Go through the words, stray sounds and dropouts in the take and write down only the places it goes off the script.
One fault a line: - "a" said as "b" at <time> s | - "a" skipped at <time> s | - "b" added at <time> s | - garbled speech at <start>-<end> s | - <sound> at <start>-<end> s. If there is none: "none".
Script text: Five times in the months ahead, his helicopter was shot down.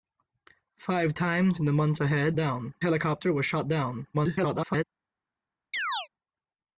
- "his" said as "down" at 2.3 s
- garbled speech at 4.1-4.8 s
- chirp at 5.7-6.1 s